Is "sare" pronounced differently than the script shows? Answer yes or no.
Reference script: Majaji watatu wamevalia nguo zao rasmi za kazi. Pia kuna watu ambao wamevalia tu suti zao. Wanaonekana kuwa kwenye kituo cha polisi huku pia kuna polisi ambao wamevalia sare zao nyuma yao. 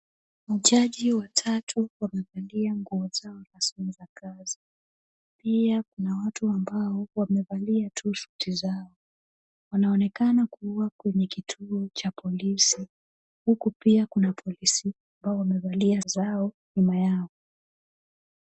yes